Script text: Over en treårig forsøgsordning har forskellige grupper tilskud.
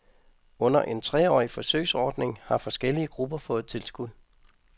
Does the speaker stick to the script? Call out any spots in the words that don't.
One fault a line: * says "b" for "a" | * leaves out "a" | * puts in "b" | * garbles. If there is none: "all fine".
* says "Under" for "Over"
* puts in "fået"